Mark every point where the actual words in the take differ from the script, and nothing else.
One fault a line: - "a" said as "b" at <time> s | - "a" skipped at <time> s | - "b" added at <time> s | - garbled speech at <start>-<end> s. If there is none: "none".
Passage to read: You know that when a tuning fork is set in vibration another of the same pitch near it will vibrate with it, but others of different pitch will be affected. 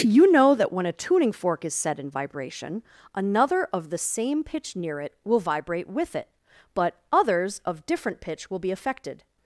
none